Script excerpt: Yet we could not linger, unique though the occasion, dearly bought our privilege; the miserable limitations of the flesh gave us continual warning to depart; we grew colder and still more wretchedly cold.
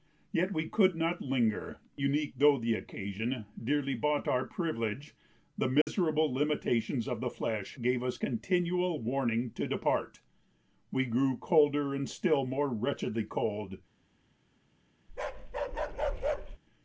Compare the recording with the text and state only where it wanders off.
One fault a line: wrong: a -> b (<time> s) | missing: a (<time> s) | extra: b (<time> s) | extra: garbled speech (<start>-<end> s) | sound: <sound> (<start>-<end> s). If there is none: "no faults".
sound: dropout (5.8-5.9 s)
sound: bark (15.1-16.6 s)